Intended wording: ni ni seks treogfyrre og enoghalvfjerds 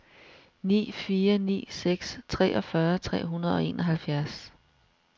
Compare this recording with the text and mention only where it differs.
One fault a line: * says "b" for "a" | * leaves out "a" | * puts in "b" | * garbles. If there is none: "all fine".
* puts in "fire"
* puts in "tre hundrede"